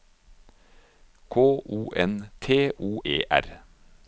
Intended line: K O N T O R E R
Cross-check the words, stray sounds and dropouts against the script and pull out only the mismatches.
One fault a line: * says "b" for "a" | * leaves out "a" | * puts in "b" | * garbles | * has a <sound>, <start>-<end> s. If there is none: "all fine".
* leaves out "R"